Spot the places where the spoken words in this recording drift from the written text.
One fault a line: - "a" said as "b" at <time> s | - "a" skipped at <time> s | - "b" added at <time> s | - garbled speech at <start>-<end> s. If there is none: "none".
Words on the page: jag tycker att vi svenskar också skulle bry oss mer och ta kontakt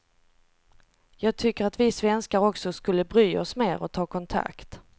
none